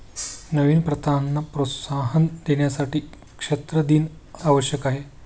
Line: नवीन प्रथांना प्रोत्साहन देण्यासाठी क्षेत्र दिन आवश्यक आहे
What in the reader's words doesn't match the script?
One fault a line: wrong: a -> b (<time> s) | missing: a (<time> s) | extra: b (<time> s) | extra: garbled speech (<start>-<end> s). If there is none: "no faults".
no faults